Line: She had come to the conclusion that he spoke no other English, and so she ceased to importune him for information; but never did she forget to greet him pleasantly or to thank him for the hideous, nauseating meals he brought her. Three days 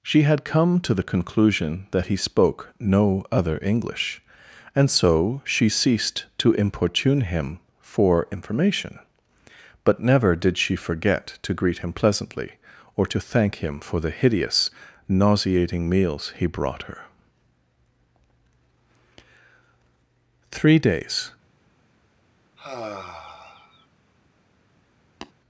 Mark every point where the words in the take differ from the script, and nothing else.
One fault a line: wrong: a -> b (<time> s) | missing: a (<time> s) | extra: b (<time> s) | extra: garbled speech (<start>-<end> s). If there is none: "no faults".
no faults